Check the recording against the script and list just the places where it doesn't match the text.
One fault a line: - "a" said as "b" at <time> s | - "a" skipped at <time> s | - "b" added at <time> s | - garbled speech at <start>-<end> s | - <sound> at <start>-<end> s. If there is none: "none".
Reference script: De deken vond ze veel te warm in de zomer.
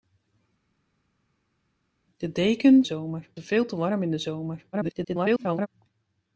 - "vond" said as "zomer" at 2.8 s
- garbled speech at 4.7-5.7 s